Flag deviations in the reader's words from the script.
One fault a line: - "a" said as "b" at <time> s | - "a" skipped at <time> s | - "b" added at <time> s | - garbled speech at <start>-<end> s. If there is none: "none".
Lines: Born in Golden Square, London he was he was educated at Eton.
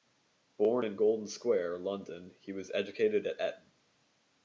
- "he was" skipped at 2.7 s